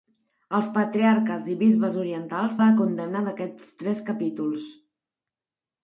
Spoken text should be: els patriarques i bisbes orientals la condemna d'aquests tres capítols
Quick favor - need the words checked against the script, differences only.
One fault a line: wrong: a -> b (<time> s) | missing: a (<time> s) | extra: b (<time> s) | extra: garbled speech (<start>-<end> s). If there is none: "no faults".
no faults